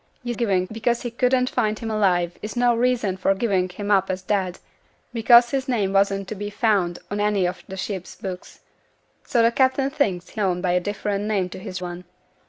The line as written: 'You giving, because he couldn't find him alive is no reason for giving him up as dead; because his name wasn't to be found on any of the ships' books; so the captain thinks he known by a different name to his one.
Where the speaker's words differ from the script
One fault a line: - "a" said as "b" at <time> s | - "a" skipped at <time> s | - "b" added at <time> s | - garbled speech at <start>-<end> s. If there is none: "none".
none